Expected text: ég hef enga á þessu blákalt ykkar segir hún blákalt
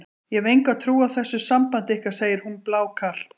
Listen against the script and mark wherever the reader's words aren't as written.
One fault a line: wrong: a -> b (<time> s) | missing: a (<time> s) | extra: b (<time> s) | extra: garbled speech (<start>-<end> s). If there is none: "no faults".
extra: trú (0.8 s)
wrong: blákalt -> sambandi (1.4 s)